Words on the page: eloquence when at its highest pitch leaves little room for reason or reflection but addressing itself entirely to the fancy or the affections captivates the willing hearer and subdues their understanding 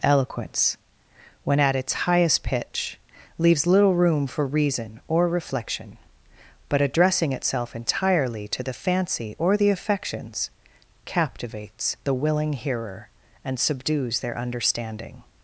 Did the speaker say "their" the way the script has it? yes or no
yes